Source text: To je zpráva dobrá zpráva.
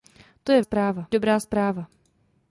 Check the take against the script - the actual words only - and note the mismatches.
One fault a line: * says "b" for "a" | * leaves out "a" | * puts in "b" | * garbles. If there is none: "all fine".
all fine